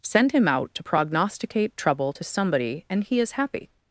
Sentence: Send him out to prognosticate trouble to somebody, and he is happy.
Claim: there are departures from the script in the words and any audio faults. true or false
false